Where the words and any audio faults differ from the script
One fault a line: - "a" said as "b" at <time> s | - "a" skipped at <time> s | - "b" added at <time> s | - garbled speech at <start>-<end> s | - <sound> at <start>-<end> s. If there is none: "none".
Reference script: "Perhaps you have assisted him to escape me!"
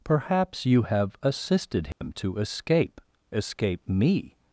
- dropout at 1.9-2.0 s
- "escape" added at 3.3 s